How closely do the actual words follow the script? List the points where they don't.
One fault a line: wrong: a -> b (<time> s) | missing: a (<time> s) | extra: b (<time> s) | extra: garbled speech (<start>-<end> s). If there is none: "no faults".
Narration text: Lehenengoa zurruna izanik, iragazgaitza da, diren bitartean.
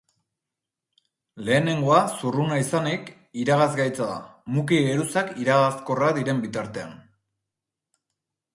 extra: muki geruzak iragazkorrak (4.6 s)